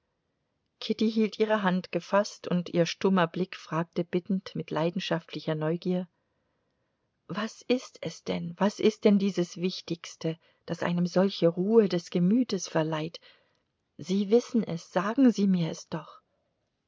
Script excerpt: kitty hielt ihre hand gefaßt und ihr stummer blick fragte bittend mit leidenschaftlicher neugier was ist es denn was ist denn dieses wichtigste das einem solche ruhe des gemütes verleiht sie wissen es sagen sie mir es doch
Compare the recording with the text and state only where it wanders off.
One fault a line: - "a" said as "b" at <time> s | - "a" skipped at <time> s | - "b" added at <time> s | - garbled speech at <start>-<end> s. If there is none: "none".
none